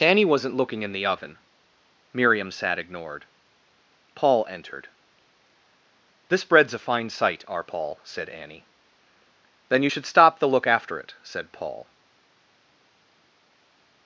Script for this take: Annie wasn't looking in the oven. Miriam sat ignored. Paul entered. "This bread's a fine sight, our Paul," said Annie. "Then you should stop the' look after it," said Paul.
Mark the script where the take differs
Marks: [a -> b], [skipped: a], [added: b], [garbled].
Annie wasn't looking in the oven. Miriam sat ignored. Paul entered. "This bread's a fine sight, our Paul," said Annie. "Then you should stop the' look after it," said Paul.